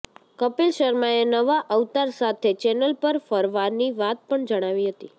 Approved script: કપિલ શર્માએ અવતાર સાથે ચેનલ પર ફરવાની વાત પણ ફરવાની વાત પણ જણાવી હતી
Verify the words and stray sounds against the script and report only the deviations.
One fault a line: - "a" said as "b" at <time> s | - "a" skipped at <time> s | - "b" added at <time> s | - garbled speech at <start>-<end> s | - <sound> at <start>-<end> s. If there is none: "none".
- "નવા" added at 1.3 s
- "ફરવાની વાત પણ" skipped at 4.5 s